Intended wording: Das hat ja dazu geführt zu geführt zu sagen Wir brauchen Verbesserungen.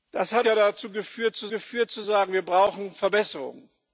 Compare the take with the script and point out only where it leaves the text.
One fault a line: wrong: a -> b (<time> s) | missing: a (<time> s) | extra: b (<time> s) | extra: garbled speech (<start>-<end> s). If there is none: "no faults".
no faults